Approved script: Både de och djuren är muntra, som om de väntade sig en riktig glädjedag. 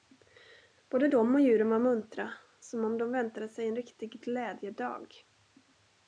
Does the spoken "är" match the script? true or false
false